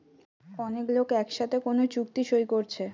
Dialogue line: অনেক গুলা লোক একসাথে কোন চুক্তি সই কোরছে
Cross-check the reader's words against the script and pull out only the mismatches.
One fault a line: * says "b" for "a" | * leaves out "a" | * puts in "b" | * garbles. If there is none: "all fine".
* leaves out "গুলা"